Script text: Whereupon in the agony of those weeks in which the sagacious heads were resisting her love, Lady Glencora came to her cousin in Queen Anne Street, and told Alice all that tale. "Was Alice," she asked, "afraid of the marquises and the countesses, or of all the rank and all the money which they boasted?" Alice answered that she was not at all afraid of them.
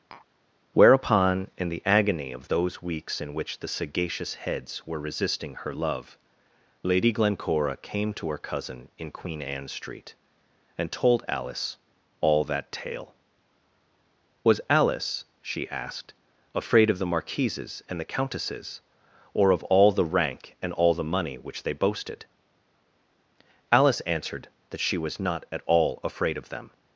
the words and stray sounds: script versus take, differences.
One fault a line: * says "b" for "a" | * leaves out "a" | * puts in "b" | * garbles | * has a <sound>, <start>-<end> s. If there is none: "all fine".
* has a tap, 0.1-0.3 s